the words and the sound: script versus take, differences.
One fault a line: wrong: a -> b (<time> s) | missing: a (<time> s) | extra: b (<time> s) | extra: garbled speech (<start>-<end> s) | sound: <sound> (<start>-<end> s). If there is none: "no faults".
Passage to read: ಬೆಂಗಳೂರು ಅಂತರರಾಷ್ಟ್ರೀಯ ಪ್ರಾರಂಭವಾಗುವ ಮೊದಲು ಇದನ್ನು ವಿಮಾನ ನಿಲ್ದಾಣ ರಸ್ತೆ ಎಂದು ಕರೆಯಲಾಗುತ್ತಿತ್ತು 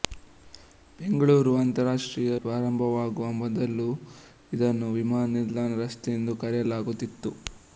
no faults